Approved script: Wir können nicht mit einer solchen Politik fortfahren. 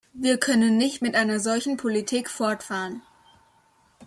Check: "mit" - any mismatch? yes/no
no